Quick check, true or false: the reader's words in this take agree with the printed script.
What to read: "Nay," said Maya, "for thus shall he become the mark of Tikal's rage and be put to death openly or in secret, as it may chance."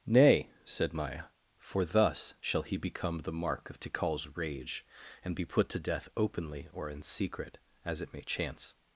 true